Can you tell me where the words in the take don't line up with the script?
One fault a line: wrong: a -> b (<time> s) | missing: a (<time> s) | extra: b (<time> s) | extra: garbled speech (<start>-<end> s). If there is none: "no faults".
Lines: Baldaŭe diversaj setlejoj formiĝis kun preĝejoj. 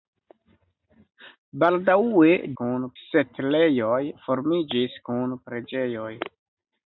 wrong: diversaj -> kun (2.6 s)